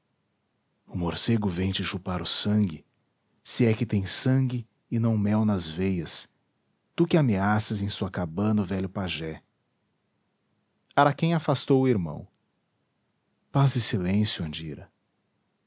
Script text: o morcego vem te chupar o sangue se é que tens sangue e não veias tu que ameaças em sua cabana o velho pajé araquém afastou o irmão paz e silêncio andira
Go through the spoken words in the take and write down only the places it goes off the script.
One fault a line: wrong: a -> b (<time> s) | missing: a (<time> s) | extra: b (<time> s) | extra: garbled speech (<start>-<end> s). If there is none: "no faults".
extra: mel nas (5.2 s)